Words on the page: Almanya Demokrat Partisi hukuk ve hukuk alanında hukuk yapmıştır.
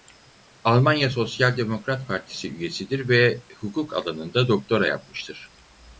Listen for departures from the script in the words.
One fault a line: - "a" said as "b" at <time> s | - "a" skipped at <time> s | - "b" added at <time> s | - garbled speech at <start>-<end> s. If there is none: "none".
- "Sosyal" added at 1.1 s
- "hukuk" said as "üyesidir" at 2.5 s
- "hukuk" said as "doktora" at 4.5 s